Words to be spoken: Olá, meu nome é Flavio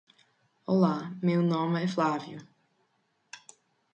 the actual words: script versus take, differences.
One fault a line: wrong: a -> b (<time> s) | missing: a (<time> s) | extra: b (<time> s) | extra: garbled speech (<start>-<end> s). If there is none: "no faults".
no faults